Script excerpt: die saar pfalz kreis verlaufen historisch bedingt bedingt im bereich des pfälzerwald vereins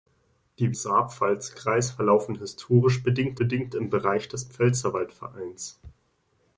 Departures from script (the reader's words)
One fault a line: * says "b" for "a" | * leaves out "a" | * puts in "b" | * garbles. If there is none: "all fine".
all fine